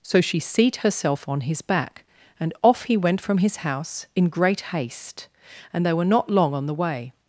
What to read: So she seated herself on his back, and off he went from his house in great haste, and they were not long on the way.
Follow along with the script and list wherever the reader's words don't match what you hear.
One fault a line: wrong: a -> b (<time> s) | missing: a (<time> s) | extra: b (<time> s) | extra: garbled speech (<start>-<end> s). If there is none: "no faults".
wrong: seated -> seat (0.4 s)